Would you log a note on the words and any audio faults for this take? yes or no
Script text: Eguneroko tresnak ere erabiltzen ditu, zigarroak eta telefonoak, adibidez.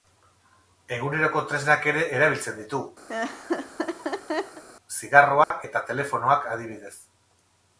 yes